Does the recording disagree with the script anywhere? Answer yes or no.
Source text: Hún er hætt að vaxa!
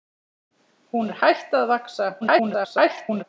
yes